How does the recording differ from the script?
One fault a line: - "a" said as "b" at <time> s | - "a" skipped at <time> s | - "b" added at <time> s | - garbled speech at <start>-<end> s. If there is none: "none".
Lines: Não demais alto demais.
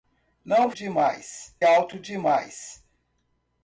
none